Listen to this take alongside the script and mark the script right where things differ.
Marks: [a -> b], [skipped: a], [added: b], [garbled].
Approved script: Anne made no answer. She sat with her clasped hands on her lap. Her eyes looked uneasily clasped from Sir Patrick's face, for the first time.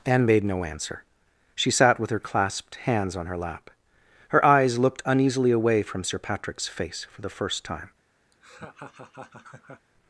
Anne made no answer. She sat with her clasped hands on her lap. Her eyes looked uneasily [clasped -> away] from Sir Patrick's face, for the first time.